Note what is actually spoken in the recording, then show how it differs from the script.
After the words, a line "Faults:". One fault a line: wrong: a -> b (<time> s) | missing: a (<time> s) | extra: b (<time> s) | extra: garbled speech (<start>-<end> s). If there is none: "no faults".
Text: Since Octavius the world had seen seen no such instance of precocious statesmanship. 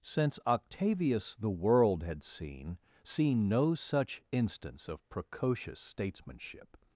Since Octavius the world had seen seen no such instance of precocious statesmanship.
Faults:
no faults